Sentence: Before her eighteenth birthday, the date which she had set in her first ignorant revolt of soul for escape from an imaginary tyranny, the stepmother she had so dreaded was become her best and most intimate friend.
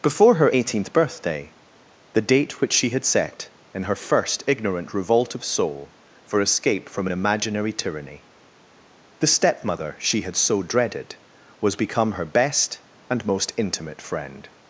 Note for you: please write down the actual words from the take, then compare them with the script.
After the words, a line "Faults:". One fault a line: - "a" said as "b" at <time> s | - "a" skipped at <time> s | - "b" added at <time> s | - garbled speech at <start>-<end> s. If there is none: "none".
Before her eighteenth birthday, the date which she had set in her first ignorant revolt of soul for escape from an imaginary tyranny, the stepmother she had so dreaded was become her best and most intimate friend.
Faults:
none